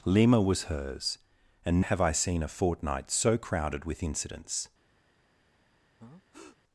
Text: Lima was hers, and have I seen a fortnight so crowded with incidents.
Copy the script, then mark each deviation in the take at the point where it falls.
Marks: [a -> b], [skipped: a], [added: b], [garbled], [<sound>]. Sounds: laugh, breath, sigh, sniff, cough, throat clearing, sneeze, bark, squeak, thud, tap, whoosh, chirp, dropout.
Lima was hers, and have I seen a fortnight so crowded with incidents. [breath]